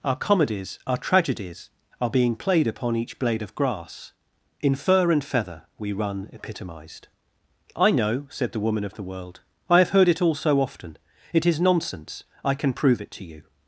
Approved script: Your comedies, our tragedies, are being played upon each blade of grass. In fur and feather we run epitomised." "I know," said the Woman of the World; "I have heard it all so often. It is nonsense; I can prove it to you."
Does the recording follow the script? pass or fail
fail